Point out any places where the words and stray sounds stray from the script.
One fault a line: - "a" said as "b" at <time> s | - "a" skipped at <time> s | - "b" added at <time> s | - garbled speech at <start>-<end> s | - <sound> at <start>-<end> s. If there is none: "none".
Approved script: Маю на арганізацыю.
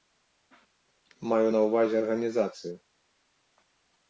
- "ўвазе" added at 1.6 s